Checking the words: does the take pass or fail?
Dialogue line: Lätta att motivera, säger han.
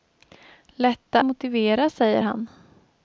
fail